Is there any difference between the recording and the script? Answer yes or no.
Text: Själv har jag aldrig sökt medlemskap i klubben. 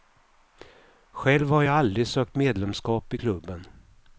no